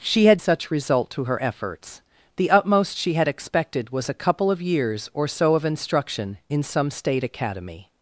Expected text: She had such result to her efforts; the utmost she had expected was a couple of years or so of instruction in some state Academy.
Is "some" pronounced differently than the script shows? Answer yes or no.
no